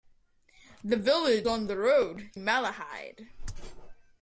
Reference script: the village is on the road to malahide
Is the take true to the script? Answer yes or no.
no